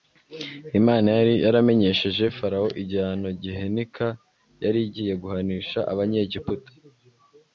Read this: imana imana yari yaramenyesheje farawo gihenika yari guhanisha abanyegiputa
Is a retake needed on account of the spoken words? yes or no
yes